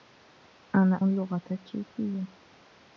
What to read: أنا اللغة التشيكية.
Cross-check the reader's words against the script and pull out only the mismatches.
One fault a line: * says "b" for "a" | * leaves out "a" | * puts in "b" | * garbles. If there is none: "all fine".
all fine